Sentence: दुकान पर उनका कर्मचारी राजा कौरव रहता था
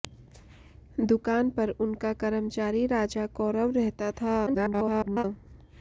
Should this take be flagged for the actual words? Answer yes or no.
yes